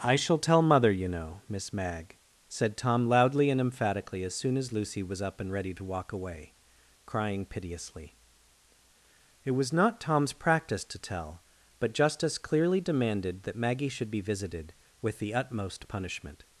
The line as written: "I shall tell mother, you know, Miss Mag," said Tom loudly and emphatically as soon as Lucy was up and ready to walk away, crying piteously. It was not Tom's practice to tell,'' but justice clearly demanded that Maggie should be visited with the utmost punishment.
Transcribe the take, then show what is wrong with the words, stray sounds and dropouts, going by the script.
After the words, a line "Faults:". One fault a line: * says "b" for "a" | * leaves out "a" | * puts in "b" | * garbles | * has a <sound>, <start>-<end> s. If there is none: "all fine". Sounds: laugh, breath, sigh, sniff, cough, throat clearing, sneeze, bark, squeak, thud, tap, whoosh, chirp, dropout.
"I shall tell mother, you know, Miss Mag," said Tom loudly and emphatically as soon as Lucy was up and ready to walk away, crying piteously. It was not Tom's practice to tell,'' but justice clearly demanded that Maggie should be visited with the utmost punishment.
Faults:
all fine